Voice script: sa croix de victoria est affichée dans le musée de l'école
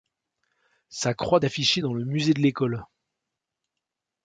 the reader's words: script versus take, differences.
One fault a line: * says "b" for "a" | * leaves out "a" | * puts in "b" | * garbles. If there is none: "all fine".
* leaves out "de victoria est"